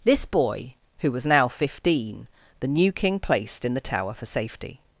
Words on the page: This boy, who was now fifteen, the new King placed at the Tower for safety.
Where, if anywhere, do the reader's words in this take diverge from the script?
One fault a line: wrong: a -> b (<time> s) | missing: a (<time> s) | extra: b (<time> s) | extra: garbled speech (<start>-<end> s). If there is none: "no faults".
wrong: at -> in (3.6 s)